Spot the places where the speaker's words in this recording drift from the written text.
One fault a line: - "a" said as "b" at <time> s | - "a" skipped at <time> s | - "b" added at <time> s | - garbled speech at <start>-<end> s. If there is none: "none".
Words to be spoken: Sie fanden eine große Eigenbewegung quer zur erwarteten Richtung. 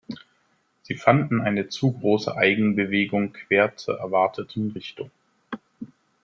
- "zu" added at 1.7 s